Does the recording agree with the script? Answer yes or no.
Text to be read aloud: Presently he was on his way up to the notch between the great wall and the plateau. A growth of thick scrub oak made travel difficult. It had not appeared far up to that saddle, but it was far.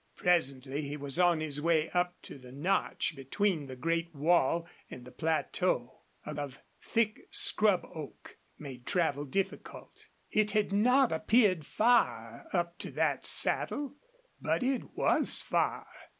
no